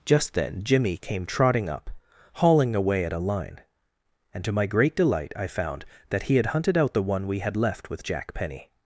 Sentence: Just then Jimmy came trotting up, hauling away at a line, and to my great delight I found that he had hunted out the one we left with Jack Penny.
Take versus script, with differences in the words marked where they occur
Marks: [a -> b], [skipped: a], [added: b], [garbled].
Just then Jimmy came trotting up, hauling away at a line, and to my great delight I found that he had hunted out the one we [added: had] left with Jack Penny.